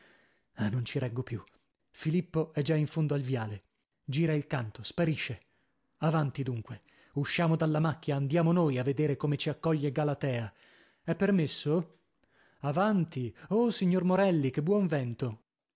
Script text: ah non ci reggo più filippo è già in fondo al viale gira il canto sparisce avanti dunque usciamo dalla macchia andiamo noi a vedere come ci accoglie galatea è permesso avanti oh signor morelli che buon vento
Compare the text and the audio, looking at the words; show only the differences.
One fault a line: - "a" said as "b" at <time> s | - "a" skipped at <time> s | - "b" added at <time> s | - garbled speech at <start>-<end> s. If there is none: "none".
none